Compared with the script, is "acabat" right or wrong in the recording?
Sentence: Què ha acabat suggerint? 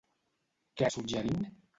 wrong